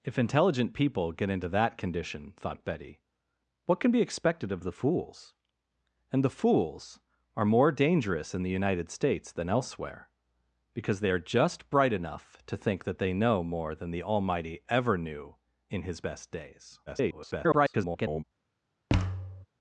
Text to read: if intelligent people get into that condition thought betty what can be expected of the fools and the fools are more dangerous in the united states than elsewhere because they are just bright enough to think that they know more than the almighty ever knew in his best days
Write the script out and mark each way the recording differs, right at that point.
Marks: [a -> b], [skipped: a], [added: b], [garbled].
if intelligent people get into that condition thought betty what can be expected of the fools and the fools are more dangerous in the united states than elsewhere because they are just bright enough to think that they know more than the almighty ever knew in his best days [garbled]